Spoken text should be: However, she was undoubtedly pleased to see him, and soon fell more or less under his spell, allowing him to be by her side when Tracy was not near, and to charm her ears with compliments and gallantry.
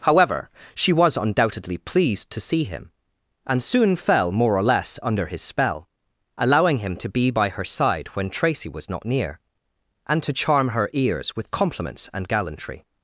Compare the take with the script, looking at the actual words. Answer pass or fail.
pass